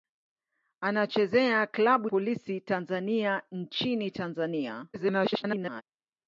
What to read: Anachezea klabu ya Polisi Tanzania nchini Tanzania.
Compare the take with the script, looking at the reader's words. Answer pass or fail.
fail